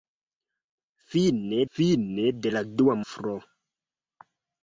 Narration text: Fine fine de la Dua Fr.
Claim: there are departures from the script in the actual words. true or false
false